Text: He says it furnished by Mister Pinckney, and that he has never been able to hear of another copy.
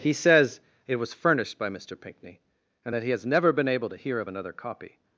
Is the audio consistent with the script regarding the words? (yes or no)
no